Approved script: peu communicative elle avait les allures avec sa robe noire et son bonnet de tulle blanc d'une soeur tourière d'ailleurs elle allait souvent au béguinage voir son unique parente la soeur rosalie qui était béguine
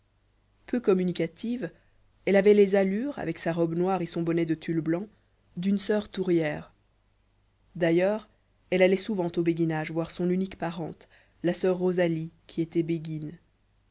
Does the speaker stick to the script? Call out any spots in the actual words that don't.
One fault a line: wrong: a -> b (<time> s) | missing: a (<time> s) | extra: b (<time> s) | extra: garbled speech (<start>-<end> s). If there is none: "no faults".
no faults